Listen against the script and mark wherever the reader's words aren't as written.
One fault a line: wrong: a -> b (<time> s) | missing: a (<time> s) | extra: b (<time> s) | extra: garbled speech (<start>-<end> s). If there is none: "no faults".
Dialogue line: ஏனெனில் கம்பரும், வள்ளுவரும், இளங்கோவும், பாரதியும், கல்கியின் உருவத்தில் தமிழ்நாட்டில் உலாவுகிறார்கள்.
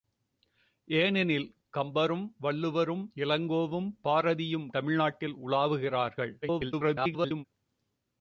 missing: கல்கியின் உருவத்தில் (4.7 s)
extra: garbled speech (6.4-7.4 s)